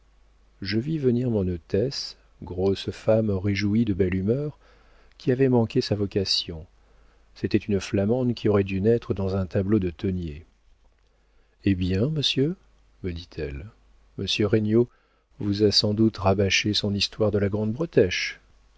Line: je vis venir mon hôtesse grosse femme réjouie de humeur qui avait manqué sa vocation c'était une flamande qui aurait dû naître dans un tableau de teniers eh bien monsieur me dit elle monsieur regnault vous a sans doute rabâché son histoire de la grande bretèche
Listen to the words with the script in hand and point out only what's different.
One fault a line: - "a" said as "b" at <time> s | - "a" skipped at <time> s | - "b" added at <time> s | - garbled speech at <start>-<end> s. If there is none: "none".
- "belle" added at 3.9 s